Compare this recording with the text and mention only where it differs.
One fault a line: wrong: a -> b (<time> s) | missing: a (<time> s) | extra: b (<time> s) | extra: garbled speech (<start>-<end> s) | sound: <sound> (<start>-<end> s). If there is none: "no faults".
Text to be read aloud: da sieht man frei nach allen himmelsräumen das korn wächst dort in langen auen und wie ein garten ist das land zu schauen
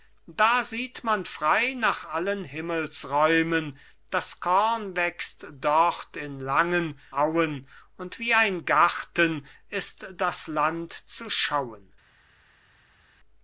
no faults